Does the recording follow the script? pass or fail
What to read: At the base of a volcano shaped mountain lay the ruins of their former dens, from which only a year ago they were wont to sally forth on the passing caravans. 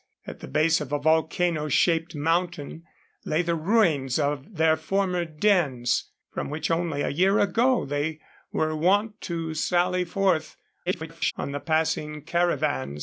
fail